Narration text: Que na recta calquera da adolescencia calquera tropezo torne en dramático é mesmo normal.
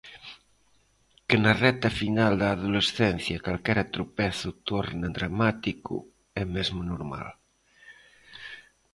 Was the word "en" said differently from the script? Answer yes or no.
no